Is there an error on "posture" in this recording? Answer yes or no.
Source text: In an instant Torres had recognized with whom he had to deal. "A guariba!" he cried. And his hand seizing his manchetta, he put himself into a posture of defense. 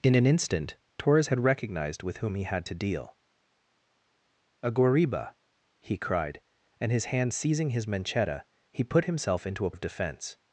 yes